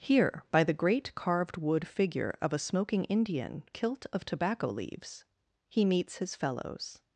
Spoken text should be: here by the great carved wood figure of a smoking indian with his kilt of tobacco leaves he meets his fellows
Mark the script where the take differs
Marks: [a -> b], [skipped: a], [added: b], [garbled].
here by the great carved wood figure of a smoking indian [skipped: with his] kilt of tobacco leaves he meets his fellows